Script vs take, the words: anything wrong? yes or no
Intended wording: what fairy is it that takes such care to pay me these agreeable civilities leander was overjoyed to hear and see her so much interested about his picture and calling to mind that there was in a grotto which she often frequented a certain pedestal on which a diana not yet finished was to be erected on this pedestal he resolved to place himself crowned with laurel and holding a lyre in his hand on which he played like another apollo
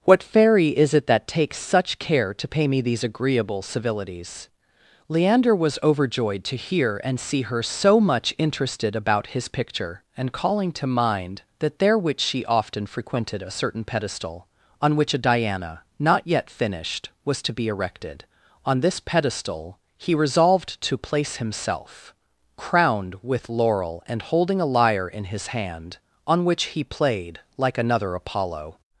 yes